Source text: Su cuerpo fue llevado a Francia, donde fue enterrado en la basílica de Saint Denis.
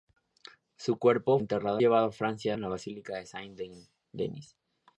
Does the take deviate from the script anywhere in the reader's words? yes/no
yes